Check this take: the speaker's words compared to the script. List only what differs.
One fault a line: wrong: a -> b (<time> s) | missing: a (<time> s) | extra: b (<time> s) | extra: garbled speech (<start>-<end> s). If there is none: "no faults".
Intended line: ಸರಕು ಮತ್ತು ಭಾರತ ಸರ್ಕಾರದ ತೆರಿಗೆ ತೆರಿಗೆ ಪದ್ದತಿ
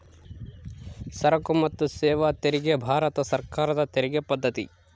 extra: ಸೇವಾ ತೆರಿಗೆ (1.9 s)
missing: ತೆರಿಗೆ (4.2 s)